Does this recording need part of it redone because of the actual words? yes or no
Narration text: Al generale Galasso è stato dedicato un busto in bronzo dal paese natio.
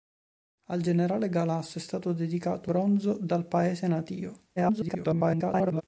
yes